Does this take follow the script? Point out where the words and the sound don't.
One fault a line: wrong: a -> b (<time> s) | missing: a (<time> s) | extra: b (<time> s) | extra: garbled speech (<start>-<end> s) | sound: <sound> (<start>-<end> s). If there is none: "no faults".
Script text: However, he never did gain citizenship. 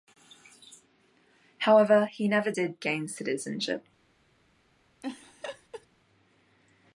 sound: laugh (5.0-5.9 s)